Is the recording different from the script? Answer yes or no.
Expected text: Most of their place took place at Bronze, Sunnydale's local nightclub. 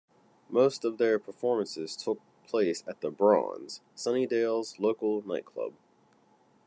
yes